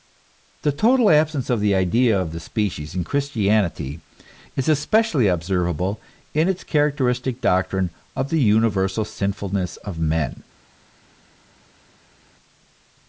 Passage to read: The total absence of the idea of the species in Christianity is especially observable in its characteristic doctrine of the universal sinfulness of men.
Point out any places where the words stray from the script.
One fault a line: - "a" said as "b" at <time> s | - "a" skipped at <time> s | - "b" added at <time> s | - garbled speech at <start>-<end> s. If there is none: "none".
none